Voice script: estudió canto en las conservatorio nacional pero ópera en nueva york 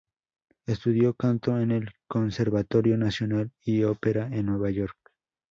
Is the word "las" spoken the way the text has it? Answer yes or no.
no